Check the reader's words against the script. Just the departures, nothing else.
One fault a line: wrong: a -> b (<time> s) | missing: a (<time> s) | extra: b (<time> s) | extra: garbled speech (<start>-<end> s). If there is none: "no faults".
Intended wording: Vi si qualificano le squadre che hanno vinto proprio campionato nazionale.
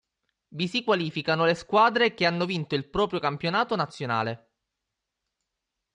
extra: il (2.8 s)